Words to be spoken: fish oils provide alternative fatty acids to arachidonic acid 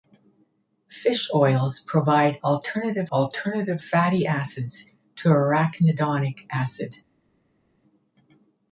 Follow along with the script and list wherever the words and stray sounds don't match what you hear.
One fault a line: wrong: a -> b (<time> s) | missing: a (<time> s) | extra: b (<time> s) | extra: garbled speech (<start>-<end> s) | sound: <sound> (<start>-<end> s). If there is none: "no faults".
extra: alternative (3.1 s)